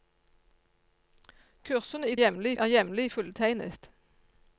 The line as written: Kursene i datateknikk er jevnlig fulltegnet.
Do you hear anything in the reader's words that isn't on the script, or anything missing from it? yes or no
yes